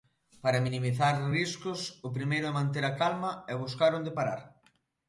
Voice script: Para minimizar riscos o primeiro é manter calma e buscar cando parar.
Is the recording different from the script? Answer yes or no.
yes